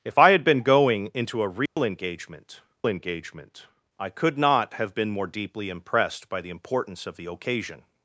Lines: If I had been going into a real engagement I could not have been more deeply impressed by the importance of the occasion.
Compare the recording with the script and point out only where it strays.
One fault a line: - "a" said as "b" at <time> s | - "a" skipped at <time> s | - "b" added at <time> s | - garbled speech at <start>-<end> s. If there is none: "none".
- "engagement" added at 2.9 s